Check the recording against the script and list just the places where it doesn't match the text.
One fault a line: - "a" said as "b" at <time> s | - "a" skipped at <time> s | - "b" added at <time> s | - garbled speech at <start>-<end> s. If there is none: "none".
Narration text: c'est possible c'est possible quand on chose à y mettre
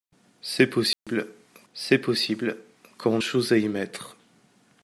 none